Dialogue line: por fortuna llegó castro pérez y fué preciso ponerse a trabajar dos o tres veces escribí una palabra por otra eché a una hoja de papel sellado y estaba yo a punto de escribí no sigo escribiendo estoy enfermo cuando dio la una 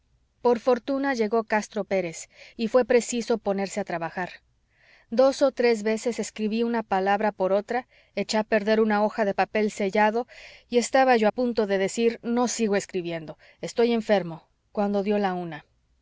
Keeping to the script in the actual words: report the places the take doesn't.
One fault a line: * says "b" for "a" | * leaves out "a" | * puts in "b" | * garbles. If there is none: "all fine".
* puts in "perder"
* says "decir" for "escribí"